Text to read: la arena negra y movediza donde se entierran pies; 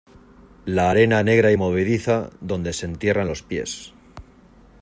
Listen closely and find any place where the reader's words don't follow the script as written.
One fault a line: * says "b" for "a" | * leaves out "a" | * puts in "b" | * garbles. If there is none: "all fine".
* puts in "los"